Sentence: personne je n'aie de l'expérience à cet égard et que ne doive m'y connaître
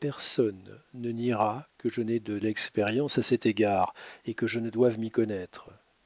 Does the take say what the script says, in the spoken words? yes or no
no